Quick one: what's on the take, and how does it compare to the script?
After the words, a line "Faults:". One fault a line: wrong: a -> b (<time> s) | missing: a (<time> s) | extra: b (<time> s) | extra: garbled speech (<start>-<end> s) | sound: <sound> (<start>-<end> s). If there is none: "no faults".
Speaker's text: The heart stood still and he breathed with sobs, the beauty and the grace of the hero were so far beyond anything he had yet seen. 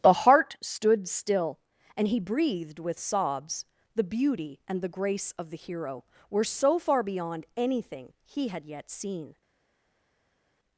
The heart stood still and he breathed with sobs, the beauty and the grace of the hero were so far beyond anything he had yet seen.
Faults:
no faults